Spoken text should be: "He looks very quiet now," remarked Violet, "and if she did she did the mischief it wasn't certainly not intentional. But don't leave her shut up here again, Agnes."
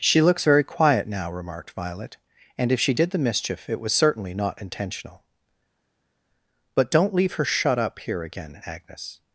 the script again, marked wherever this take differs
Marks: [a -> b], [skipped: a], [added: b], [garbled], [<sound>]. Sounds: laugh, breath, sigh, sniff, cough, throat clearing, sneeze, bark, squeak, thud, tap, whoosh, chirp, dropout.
["He -> She] looks very quiet now," remarked Violet, "and if she did [skipped: she did] the mischief it [wasn't -> was] certainly not intentional. But don't leave her shut up here again, Agnes."